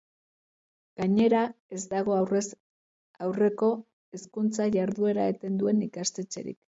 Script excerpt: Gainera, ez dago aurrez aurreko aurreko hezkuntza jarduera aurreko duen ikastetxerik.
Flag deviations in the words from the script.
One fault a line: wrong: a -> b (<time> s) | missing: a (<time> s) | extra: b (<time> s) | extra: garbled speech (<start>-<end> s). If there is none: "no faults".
missing: aurreko (3.7 s)
wrong: aurreko -> eten (5.3 s)